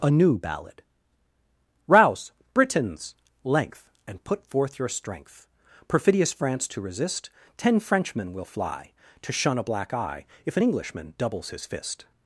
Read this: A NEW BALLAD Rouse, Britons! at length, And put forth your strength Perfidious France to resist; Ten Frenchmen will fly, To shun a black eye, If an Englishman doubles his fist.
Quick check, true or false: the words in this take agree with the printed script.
false